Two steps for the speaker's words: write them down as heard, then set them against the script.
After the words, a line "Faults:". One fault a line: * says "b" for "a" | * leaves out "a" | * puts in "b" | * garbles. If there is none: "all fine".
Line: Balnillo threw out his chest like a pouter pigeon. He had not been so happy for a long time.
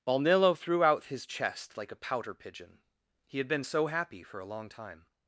Balnillo threw out his chest like a pouter pigeon. He had been so happy for a long time.
Faults:
* leaves out "not"